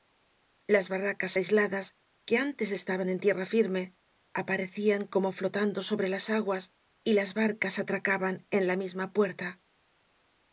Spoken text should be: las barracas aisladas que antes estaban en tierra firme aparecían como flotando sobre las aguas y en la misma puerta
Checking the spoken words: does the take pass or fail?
fail